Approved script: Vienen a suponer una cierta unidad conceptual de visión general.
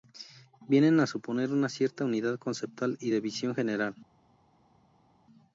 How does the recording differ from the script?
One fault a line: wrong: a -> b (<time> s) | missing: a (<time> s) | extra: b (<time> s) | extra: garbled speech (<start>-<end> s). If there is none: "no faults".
extra: y (3.0 s)